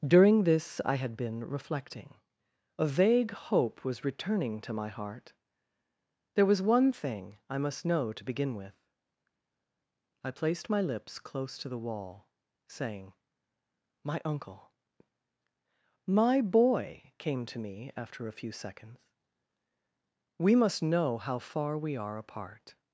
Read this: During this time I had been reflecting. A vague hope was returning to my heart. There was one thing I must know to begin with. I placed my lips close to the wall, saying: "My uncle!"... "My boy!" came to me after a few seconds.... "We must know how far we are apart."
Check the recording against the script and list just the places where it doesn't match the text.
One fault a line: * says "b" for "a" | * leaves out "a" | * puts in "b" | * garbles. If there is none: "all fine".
* leaves out "time"